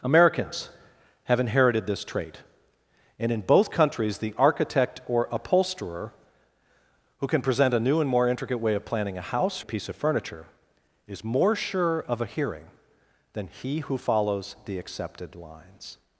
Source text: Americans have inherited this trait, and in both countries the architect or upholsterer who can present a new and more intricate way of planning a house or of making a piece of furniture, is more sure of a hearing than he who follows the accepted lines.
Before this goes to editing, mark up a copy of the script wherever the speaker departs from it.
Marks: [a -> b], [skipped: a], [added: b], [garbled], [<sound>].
Americans have inherited this trait, and in both countries the architect or upholsterer who can present a new and more intricate way of planning a house [skipped: or of making] a piece of furniture, is more sure of a hearing than he who follows the accepted lines.